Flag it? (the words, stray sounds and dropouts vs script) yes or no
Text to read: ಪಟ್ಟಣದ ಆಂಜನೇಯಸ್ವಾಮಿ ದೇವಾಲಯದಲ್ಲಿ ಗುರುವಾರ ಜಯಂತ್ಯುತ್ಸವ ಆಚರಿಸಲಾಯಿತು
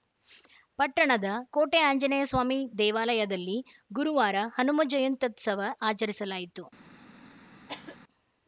yes